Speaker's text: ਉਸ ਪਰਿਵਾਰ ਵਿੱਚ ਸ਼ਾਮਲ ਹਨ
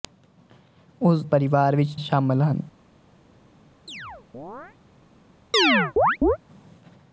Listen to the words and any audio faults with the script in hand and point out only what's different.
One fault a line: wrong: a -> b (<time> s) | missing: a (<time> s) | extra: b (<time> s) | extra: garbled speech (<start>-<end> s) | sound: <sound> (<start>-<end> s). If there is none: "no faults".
sound: chirp (3.9-4.8 s)
sound: chirp (5.5-6.4 s)